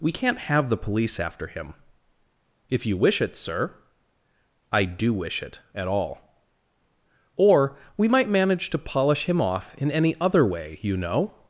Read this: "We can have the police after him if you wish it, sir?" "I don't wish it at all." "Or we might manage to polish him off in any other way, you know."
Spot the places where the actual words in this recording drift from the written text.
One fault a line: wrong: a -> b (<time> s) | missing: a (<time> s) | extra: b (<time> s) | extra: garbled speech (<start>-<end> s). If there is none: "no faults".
wrong: can -> can't (0.1 s)
wrong: don't -> do (4.8 s)